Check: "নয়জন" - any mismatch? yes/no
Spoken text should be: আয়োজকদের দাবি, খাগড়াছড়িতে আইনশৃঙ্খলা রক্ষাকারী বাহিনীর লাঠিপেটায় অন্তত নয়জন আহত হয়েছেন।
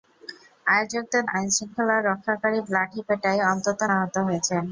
yes